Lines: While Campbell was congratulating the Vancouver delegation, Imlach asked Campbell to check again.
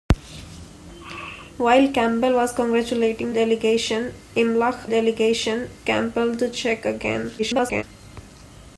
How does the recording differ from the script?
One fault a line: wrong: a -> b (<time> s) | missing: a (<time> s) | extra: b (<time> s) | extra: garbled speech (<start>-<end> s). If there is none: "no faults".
missing: the Vancouver (3.4 s)
wrong: asked -> delegation (4.9 s)
extra: garbled speech (7.4-7.8 s)